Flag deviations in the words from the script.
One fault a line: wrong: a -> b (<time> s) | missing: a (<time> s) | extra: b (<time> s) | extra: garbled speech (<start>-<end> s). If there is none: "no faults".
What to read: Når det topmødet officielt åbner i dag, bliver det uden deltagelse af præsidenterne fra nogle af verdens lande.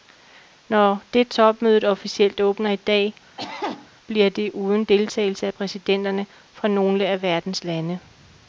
no faults